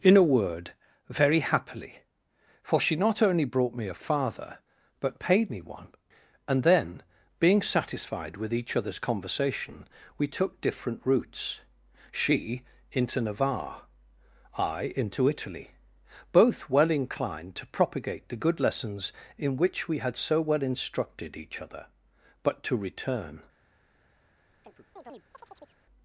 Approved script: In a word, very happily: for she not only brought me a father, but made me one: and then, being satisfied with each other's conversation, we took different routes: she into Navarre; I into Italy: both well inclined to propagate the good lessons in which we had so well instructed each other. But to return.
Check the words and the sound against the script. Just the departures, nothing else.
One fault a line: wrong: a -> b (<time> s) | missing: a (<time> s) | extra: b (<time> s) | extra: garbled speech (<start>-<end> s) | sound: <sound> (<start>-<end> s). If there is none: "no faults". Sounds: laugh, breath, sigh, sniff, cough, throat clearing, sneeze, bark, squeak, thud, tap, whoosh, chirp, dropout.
wrong: made -> paid (5.2 s)
sound: chirp (24.6-25.8 s)